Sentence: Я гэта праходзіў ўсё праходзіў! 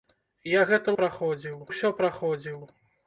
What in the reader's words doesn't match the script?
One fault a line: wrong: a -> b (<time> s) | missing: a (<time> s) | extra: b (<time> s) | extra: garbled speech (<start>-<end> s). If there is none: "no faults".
no faults